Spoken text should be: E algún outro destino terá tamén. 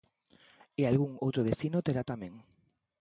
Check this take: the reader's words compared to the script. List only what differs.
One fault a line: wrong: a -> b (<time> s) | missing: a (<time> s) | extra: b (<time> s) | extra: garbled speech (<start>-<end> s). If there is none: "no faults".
no faults